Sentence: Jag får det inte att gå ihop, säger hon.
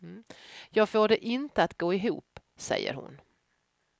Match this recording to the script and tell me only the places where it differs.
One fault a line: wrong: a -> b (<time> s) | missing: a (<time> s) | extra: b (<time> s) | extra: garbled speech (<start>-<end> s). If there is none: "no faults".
no faults